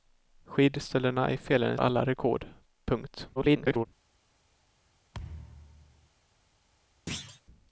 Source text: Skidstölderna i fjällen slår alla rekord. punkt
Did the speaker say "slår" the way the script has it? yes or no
no